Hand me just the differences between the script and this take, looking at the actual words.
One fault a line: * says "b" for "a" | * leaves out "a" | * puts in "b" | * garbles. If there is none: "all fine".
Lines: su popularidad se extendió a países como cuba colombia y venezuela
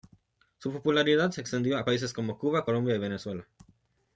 all fine